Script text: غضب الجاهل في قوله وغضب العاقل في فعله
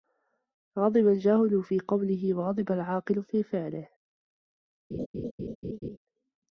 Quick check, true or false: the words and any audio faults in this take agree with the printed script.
false